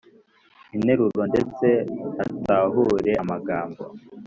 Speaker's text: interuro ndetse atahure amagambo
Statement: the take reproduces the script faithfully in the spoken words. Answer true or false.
true